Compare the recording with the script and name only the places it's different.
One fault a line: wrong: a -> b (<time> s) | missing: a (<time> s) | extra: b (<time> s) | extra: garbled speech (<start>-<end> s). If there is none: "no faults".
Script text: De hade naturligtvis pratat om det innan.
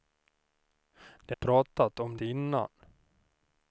missing: hade naturligtvis (1.4 s)
missing: det (2.2 s)